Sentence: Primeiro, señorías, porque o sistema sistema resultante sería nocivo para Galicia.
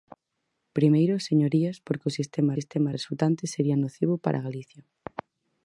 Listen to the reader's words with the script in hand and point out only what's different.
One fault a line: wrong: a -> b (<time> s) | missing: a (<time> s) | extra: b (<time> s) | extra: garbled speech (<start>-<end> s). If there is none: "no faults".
no faults